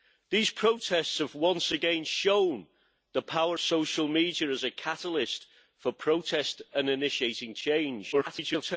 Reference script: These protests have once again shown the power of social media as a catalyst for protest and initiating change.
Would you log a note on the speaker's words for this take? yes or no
yes